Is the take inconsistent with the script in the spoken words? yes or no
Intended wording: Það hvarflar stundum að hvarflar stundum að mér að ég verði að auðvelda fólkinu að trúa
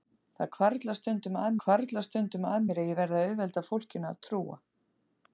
no